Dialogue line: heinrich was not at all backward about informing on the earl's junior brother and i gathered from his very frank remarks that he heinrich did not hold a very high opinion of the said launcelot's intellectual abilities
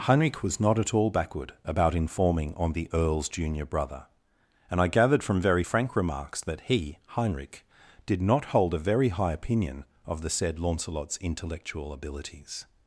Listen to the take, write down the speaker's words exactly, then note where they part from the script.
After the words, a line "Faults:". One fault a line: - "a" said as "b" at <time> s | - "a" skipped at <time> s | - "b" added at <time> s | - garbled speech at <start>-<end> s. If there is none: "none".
heinrich was not at all backward about informing on the earl's junior brother and i gathered from very frank remarks that he heinrich did not hold a very high opinion of the said launcelot's intellectual abilities
Faults:
- "his" skipped at 5.4 s